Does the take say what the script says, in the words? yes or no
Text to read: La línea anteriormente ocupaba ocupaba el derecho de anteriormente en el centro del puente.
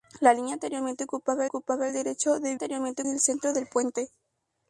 yes